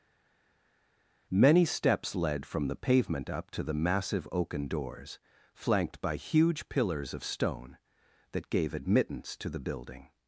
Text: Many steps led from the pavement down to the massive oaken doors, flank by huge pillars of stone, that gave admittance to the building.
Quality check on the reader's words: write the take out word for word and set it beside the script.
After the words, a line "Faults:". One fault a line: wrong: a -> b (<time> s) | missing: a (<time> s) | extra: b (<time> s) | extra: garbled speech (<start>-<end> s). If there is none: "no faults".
Many steps led from the pavement up to the massive oaken doors, flanked by huge pillars of stone, that gave admittance to the building.
Faults:
wrong: down -> up (3.3 s)
wrong: flank -> flanked (5.5 s)